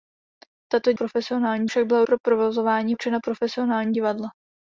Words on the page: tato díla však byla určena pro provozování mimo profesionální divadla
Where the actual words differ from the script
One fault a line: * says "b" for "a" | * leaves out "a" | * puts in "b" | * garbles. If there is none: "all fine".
* says "profesionální" for "díla"
* leaves out "určena"
* says "určena" for "mimo"